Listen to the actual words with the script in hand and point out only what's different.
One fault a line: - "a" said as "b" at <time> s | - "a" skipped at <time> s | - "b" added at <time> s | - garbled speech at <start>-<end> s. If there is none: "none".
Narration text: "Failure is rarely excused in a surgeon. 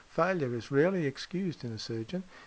none